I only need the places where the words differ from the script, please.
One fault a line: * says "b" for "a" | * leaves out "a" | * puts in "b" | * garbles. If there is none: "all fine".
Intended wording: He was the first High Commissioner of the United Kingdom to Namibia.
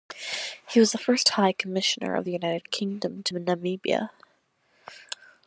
all fine